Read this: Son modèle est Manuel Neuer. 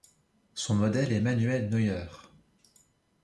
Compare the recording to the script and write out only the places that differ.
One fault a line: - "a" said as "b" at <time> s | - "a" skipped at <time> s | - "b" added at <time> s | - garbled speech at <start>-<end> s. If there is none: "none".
none